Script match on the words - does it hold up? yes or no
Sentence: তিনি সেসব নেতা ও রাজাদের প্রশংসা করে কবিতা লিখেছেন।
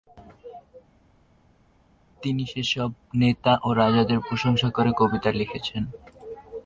yes